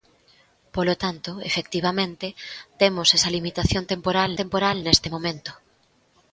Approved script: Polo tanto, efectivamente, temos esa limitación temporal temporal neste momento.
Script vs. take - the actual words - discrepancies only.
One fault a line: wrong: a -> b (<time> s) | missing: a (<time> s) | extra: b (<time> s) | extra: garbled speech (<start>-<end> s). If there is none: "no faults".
no faults